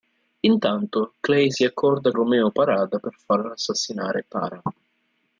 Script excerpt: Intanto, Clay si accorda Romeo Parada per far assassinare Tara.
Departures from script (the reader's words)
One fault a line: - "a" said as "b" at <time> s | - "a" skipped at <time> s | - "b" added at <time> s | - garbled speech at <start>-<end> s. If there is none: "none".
none